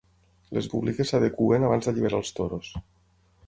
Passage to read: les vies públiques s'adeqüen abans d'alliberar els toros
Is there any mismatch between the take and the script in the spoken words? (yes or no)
yes